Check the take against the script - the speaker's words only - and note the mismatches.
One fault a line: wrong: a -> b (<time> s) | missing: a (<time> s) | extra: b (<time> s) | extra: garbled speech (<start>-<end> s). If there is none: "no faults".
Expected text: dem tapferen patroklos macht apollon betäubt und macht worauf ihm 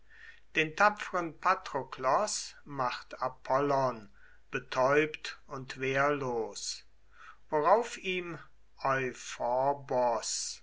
wrong: dem -> den (0.6 s)
wrong: macht -> wehrlos (5.8 s)